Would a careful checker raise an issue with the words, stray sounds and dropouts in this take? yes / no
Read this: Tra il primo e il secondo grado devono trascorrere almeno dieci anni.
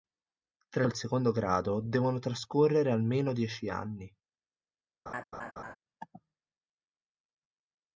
yes